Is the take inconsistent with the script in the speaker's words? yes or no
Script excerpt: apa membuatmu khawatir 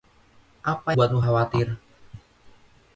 no